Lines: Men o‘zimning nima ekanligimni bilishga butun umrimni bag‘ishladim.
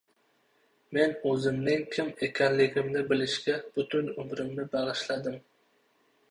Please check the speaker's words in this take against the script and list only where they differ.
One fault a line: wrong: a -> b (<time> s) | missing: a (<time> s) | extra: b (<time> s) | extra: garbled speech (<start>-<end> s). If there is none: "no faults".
wrong: nima -> kim (1.9 s)